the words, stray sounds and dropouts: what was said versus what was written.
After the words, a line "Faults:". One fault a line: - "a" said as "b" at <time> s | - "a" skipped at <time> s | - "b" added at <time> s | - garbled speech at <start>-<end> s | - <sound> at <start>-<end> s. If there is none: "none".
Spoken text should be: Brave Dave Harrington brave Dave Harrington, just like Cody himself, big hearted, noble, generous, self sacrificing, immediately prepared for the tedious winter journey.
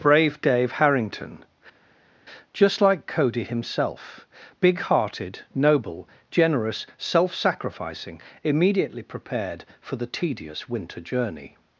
Brave Dave Harrington, just like Cody himself, big hearted, noble, generous, self sacrificing, immediately prepared for the tedious winter journey.
Faults:
- "brave Dave Harrington" skipped at 1.4 s